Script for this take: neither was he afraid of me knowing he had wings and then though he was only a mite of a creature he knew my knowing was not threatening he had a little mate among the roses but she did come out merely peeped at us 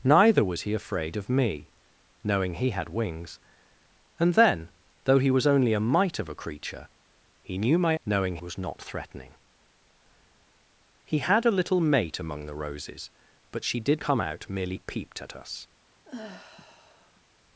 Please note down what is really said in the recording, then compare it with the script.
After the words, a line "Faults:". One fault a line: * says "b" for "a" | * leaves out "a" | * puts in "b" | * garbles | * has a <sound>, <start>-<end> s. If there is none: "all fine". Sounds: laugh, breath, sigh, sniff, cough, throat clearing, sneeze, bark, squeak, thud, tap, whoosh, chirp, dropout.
neither was he afraid of me knowing he had wings and then though he was only a mite of a creature he knew my knowing was not threatening he had a little mate among the roses but she did come out merely peeped at us
Faults:
* has a sigh, 16.1-17.2 s